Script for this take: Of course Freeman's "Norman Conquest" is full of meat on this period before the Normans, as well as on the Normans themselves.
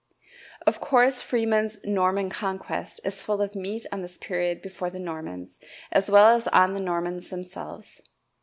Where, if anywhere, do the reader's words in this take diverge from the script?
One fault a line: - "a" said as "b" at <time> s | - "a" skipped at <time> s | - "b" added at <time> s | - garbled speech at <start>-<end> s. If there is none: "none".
none